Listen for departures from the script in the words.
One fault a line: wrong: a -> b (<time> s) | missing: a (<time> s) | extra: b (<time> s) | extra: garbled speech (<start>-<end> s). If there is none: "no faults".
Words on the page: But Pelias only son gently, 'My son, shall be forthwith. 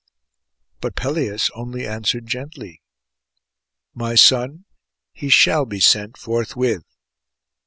wrong: son -> answered (1.8 s)
extra: he (5.1 s)
extra: sent (5.8 s)